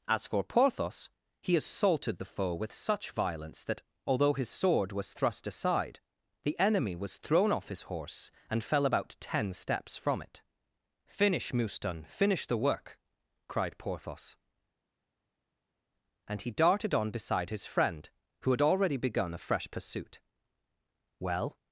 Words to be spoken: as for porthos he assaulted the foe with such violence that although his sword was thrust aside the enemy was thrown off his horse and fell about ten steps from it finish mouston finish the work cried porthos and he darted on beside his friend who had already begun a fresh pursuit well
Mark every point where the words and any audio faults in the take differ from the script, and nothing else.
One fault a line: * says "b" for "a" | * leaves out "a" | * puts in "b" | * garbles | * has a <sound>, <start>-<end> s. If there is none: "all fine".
all fine